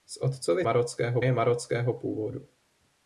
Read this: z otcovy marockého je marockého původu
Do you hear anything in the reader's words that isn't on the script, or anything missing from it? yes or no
no